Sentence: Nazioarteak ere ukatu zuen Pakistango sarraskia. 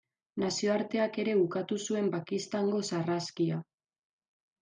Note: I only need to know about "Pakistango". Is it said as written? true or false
true